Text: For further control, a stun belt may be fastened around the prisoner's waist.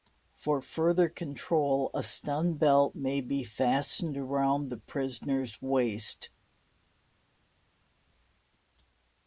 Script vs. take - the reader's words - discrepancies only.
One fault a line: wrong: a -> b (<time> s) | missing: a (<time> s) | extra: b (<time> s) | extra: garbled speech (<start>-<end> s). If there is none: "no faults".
no faults